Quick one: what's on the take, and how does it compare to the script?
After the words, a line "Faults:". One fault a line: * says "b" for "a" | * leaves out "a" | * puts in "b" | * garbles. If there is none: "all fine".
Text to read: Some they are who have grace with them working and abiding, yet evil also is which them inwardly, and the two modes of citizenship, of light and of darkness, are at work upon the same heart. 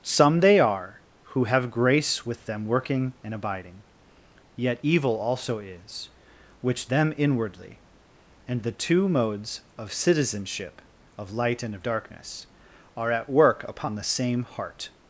Some they are who have grace with them working and abiding, yet evil also is which them inwardly, and the two modes of citizenship, of light and of darkness, are at work upon the same heart.
Faults:
all fine